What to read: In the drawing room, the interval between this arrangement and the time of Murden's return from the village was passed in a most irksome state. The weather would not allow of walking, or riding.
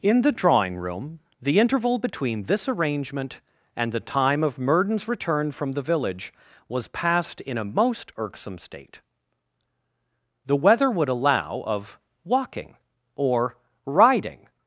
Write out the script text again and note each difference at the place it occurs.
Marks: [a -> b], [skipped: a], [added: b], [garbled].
In the drawing room, the interval between this arrangement and the time of Murden's return from the village was passed in a most irksome state. The weather would [skipped: not] allow of walking, or riding.